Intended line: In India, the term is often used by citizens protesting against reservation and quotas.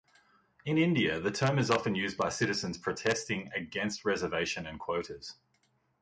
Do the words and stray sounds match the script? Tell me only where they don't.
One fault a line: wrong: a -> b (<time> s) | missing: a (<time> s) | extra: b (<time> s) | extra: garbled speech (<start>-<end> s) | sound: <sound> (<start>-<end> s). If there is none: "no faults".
no faults